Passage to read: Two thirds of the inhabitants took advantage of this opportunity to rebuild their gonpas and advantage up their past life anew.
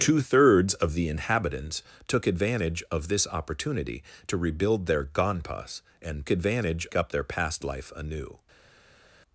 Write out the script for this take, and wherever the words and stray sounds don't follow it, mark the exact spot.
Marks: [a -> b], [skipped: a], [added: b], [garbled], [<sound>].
Two thirds of the inhabitants took advantage of this opportunity to rebuild their gonpas and advantage up their past life anew.